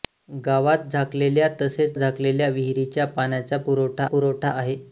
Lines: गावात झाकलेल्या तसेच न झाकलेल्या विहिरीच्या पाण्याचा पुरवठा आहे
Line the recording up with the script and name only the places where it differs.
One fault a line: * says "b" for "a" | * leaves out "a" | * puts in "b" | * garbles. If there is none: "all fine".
* leaves out "न"
* puts in "पुरवठा"